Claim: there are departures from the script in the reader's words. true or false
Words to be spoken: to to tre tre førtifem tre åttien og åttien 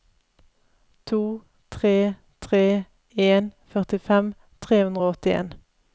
true